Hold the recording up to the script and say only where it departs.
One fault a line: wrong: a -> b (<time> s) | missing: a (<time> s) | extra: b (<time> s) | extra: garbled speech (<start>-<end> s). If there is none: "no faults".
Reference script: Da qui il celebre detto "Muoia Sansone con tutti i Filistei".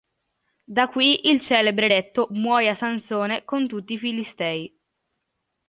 no faults